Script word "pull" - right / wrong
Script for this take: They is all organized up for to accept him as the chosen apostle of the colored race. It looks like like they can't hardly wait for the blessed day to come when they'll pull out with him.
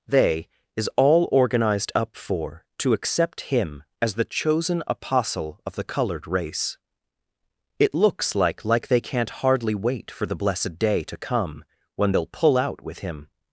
right